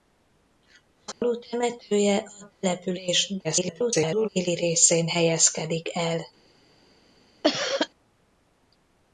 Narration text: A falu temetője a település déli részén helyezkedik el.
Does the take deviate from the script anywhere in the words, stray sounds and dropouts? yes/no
yes